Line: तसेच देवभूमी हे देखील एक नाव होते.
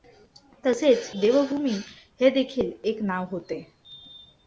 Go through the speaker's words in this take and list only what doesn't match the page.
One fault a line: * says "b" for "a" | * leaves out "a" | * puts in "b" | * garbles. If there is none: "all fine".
all fine